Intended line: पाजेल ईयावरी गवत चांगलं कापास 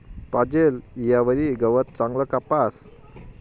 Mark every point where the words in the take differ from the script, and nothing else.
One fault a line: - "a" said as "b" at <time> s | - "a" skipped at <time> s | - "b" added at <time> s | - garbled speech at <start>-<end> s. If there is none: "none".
none